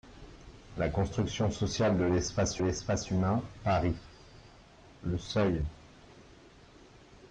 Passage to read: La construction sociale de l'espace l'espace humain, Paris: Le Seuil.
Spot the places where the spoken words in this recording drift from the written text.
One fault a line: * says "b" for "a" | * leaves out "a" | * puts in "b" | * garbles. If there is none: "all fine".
all fine